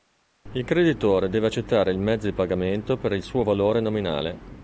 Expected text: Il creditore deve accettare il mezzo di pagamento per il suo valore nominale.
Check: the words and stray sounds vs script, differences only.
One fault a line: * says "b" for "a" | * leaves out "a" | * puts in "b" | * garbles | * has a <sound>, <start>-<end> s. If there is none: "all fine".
all fine